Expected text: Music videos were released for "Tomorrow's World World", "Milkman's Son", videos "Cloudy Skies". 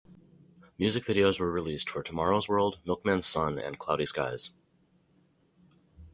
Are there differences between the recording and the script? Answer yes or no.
yes